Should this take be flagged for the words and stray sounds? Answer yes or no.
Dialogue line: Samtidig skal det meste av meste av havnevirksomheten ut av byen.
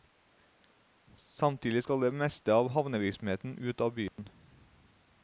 yes